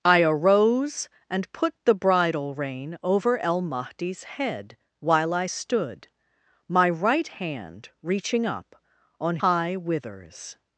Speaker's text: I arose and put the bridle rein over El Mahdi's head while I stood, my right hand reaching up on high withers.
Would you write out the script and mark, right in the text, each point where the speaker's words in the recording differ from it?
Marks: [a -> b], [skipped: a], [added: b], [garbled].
I arose and put the bridle rein over El Mahdi's head while I stood, my right hand reaching up on high withers.